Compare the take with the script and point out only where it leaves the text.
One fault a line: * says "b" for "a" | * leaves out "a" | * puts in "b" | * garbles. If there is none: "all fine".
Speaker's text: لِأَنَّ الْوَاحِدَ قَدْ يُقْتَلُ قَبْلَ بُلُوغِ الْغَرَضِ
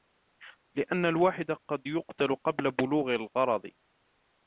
all fine